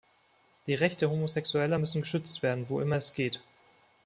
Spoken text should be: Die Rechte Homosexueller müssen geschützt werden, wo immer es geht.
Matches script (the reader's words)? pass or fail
pass